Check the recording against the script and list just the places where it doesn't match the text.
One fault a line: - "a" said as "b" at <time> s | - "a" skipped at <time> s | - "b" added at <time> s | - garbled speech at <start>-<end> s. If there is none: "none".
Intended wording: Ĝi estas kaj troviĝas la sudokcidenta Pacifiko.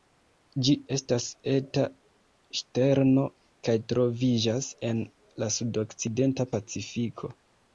- "eta ŝterno" added at 1.5 s
- "en" added at 4.9 s